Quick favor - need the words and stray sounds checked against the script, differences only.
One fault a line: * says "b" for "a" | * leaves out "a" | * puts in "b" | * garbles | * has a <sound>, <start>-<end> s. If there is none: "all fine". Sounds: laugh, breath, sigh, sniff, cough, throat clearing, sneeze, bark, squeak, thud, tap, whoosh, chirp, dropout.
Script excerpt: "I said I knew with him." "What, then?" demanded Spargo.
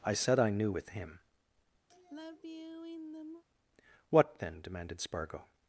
* has a sigh, 1.9-3.4 s